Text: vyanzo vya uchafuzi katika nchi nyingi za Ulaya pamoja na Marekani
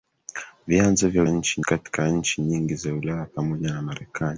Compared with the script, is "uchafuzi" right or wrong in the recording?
wrong